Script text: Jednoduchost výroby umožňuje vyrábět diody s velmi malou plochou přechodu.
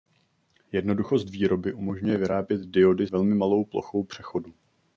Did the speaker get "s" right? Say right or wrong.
wrong